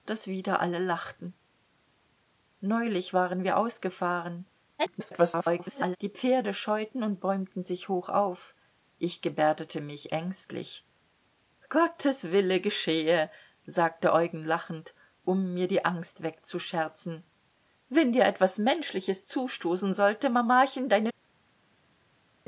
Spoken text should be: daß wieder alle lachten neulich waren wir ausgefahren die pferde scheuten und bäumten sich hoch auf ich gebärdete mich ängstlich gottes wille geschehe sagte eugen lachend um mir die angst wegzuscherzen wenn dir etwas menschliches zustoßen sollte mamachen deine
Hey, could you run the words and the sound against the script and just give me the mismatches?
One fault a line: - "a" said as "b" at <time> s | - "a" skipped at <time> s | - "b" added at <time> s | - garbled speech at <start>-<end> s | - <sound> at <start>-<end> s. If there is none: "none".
- garbled speech at 4.8-6.0 s